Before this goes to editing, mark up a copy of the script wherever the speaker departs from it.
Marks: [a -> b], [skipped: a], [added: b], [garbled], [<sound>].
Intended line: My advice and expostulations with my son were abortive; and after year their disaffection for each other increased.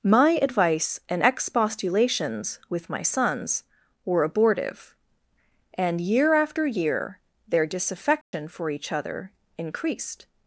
My advice and expostulations with my [son -> sons] were abortive; and [added: year] after year their disaffection [dropout] for each other increased.